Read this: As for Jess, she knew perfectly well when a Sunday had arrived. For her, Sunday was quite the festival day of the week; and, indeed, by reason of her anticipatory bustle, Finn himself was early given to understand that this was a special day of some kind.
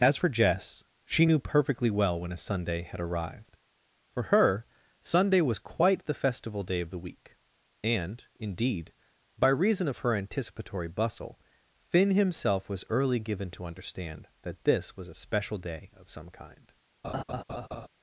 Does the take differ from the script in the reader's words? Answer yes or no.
no